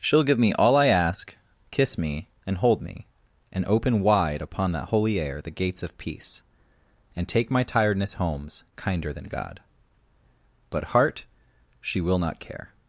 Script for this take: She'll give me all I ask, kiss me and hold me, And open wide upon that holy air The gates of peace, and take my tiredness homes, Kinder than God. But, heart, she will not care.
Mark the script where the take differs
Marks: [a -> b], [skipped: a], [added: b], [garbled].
She'll give me all I ask, kiss me and hold me, And open wide upon that holy air The gates of peace, and take my tiredness homes, Kinder than God. But, heart, she will not care.